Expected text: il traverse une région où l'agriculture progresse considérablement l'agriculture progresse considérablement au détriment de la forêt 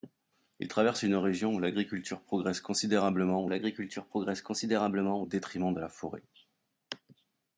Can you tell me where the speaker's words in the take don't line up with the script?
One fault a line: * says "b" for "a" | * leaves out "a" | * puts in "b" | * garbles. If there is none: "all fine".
all fine